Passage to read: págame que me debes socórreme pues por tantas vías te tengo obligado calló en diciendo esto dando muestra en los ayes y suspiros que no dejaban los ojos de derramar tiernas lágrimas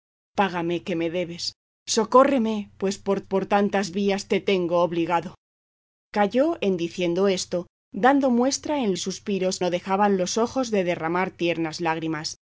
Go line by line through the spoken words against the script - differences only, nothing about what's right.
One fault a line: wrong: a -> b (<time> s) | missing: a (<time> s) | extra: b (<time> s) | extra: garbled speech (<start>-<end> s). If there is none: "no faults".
extra: por (3.2 s)
missing: los ayes (9.0 s)
missing: que (9.6 s)